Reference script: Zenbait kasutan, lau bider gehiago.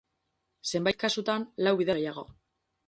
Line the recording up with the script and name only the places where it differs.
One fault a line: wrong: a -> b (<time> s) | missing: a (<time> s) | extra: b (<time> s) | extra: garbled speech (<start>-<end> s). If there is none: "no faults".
no faults